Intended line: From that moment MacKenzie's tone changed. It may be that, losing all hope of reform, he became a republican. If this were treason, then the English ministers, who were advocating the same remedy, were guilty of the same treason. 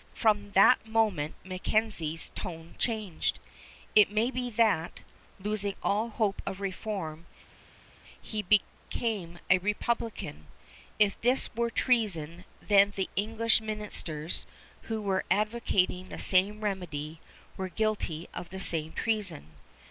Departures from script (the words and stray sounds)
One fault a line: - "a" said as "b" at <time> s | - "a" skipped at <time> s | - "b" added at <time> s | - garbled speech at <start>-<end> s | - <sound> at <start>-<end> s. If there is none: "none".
none